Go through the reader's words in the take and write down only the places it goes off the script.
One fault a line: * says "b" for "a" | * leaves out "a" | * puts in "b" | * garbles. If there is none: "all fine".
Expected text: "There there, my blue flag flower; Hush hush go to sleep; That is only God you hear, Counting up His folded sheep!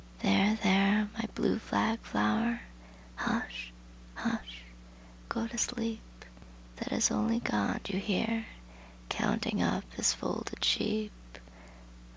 all fine